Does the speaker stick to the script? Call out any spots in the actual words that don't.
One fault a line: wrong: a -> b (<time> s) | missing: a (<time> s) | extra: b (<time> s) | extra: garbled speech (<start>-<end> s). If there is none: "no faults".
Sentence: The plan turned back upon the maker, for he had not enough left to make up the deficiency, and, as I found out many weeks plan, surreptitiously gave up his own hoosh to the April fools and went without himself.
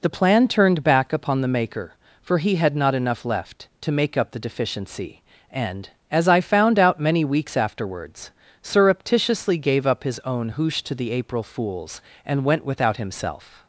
wrong: plan -> afterwards (7.5 s)